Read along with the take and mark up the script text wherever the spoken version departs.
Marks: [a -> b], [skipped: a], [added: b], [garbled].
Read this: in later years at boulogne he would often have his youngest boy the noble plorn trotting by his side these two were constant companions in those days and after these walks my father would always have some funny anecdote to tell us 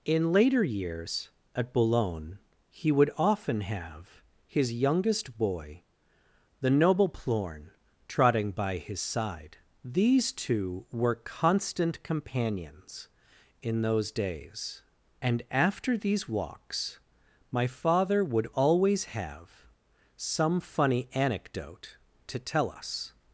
in later years at boulogne he would often have his youngest boy the noble plorn trotting by his side these two were constant companions in those days and after these walks my father would always have some funny anecdote to tell us